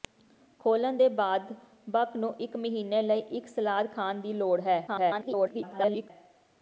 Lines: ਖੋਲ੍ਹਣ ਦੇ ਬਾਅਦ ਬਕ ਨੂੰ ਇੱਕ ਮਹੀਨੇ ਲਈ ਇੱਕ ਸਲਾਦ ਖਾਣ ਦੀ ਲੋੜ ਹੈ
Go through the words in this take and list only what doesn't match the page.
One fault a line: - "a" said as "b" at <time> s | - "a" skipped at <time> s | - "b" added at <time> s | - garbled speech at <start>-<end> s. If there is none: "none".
- garbled speech at 4.9-6.1 s